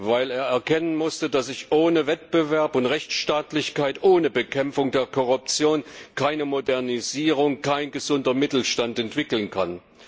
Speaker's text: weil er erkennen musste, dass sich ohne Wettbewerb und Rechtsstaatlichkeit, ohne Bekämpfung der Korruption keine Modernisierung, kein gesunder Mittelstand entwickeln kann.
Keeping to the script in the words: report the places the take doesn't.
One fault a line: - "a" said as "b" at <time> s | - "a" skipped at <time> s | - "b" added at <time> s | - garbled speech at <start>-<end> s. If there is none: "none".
none